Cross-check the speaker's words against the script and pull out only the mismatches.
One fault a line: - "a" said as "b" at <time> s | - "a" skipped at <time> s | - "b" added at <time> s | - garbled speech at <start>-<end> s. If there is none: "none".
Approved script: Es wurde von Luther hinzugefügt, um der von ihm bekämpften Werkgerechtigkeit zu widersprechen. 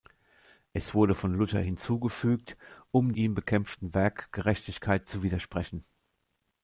- "der von" skipped at 3.1 s